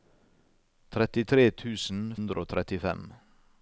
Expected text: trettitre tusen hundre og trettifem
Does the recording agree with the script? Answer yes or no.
yes